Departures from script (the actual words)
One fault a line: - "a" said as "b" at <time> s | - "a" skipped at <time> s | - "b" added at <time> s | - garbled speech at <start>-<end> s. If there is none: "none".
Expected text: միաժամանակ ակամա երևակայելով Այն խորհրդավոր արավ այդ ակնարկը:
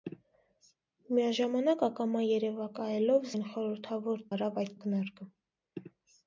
none